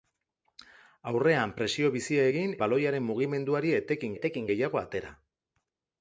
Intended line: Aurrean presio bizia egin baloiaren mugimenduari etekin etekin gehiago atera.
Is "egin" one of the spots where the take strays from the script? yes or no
no